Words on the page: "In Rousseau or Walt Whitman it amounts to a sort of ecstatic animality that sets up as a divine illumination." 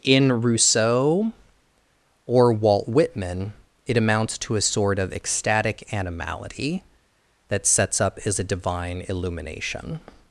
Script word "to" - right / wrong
right